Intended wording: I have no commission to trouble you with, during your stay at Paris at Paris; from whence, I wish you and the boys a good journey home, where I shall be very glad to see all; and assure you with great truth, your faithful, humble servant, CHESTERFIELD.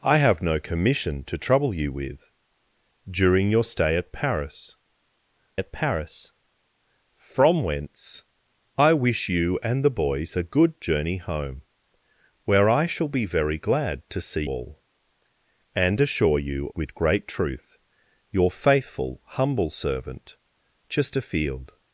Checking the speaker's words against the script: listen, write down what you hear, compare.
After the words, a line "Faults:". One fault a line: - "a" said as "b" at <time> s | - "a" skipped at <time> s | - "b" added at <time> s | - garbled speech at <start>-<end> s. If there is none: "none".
I have no commission to trouble you with, during your stay at Paris at Paris; from whence, I wish you and the boys a good journey home, where I shall be very glad to see all; and assure you with great truth, your faithful, humble servant, CHESTERFIELD.
Faults:
none